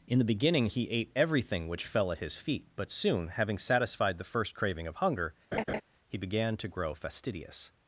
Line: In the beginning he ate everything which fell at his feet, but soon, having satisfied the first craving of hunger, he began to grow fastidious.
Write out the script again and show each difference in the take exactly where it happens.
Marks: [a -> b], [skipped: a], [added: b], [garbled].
In the beginning he ate everything which fell at his feet, but soon, having satisfied the first craving of hunger, he began to grow fastidious.